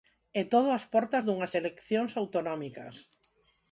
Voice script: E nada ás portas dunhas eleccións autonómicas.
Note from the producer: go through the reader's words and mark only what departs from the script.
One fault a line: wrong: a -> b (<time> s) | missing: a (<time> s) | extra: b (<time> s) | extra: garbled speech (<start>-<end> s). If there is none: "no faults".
wrong: nada -> todo (0.5 s)